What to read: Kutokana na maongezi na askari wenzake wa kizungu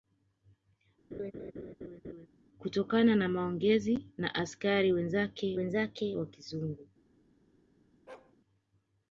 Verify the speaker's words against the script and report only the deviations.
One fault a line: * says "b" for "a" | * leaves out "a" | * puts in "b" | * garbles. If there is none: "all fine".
* puts in "wenzake"